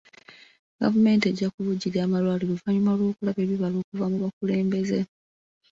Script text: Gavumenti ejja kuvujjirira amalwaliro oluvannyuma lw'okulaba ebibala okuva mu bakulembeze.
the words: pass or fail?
pass